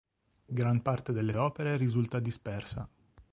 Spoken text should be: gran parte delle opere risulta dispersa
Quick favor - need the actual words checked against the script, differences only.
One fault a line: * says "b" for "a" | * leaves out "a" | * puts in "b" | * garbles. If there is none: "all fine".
all fine